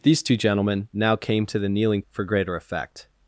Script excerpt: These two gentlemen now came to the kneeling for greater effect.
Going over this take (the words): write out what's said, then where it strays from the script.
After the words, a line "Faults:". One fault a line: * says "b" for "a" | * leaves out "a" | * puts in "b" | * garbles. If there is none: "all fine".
These two gentlemen now came to the kneeling for greater effect.
Faults:
all fine